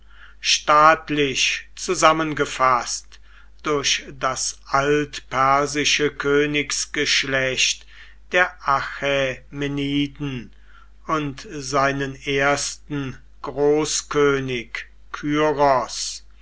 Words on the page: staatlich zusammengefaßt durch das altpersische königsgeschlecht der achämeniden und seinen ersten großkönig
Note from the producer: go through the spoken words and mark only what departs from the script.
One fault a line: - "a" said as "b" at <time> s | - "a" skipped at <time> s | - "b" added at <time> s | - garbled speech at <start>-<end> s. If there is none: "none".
none